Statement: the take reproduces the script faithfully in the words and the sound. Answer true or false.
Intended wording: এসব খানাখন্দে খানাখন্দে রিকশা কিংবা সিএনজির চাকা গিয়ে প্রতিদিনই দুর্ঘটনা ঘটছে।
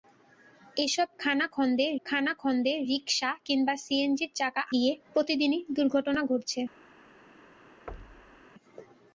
false